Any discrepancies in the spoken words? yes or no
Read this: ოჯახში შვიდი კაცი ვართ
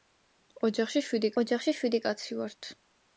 yes